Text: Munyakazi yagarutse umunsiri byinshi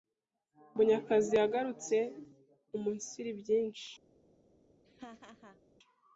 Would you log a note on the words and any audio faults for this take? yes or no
yes